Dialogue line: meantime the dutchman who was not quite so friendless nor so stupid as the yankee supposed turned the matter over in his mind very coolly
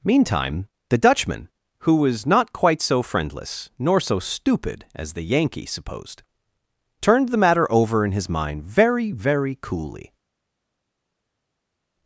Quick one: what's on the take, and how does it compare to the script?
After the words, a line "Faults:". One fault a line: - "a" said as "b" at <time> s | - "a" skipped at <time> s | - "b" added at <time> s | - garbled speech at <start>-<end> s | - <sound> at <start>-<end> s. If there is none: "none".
meantime the dutchman who was not quite so friendless nor so stupid as the yankee supposed turned the matter over in his mind very very coolly
Faults:
- "very" added at 9.1 s